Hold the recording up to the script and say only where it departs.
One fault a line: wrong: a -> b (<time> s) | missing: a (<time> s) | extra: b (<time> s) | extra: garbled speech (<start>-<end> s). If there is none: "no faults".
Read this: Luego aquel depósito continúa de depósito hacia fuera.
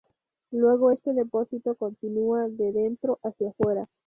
wrong: aquel -> este (0.9 s)
wrong: depósito -> dentro (2.7 s)